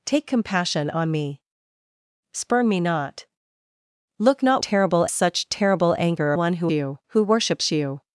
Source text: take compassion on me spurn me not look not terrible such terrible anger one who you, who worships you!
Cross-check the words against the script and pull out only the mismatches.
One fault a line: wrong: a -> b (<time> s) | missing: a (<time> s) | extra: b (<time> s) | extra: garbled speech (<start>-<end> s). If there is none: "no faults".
no faults